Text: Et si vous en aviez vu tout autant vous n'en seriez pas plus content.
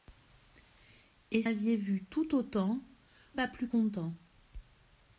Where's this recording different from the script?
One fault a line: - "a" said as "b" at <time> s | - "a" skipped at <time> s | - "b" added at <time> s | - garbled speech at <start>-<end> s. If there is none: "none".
- "si vous en" skipped at 1.4 s
- "vous n'en seriez" skipped at 2.8 s